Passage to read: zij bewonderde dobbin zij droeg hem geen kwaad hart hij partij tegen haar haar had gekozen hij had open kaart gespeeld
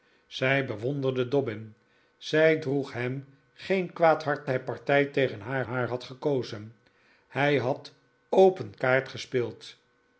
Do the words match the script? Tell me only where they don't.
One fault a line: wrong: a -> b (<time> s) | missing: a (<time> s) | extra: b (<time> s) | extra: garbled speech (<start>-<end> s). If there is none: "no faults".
no faults